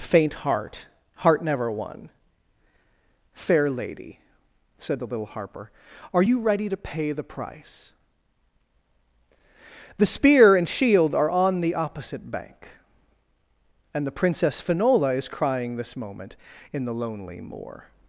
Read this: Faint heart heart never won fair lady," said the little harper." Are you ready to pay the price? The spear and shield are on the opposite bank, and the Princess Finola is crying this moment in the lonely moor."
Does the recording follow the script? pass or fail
pass